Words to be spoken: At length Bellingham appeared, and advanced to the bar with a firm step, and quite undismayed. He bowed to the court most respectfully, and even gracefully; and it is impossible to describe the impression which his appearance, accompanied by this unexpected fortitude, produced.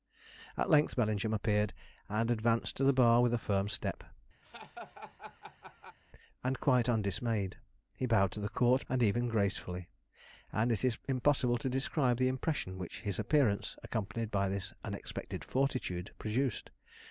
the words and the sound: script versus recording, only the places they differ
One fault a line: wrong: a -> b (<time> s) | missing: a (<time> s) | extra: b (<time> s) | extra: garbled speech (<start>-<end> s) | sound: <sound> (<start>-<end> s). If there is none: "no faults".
sound: laugh (4.4-6.0 s)
missing: most respectfully (8.9 s)